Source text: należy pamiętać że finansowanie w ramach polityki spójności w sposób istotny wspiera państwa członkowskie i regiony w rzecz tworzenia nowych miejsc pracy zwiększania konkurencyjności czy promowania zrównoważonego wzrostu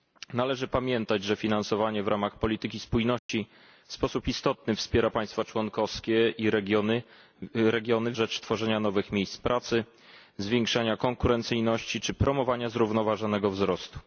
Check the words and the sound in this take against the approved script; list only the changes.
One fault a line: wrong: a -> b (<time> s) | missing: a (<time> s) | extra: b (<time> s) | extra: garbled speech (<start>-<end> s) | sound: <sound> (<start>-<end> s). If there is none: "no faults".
sound: dropout (3.2-3.3 s)